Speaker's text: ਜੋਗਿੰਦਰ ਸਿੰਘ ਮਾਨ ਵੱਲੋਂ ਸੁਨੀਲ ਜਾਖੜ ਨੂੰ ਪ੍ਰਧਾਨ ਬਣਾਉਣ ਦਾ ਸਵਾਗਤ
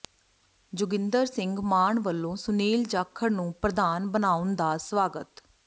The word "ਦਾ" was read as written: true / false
true